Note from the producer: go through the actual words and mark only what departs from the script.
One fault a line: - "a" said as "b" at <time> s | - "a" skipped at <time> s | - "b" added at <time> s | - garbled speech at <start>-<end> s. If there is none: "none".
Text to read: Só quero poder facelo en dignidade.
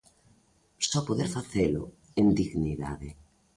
- "quero" skipped at 1.0 s